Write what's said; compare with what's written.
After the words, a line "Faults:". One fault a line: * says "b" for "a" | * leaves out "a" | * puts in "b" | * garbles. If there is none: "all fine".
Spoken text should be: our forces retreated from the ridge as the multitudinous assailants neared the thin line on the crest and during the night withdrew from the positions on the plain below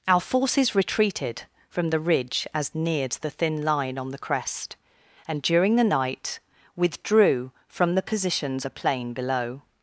our forces retreated from the ridge as neared the thin line on the crest and during the night withdrew from the positions the plain below
Faults:
* leaves out "the multitudinous assailants"
* leaves out "on"